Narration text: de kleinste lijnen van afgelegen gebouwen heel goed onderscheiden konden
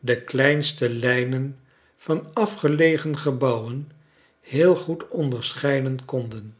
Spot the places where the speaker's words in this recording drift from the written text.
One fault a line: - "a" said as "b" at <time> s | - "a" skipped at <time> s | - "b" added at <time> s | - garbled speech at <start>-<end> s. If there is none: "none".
none